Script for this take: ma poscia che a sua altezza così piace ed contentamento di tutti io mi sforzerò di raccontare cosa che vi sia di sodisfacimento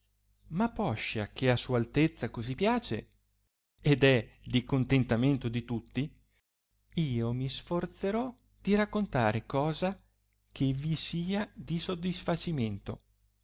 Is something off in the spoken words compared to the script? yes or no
yes